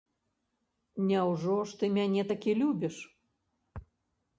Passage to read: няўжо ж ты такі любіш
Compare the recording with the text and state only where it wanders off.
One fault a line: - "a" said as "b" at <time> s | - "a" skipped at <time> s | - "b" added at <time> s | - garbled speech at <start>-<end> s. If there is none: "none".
- "мяне" added at 2.0 s